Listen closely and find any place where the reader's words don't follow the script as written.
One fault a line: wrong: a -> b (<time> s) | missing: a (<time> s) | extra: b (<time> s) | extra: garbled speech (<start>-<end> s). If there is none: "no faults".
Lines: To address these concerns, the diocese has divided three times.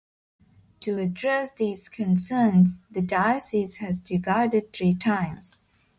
no faults